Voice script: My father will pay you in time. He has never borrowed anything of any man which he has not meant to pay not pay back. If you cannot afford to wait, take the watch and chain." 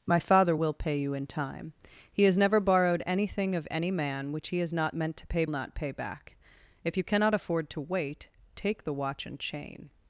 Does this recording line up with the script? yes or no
yes